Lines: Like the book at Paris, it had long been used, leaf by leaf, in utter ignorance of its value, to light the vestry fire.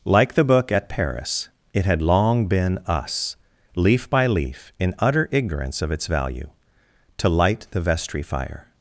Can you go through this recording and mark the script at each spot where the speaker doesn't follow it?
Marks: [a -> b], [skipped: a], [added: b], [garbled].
Like the book at Paris, it had long been [used, -> us] leaf by leaf, in utter ignorance of its value, to light the vestry fire.